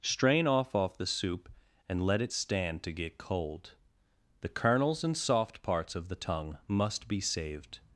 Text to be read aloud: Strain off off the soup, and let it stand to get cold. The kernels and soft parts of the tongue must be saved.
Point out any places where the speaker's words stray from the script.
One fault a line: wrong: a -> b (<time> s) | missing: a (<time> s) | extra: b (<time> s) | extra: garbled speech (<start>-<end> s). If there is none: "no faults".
no faults